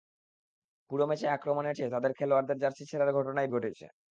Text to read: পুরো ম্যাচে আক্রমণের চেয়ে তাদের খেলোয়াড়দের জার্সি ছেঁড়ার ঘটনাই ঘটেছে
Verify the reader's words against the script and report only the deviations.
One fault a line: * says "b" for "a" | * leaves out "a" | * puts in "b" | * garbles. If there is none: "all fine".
all fine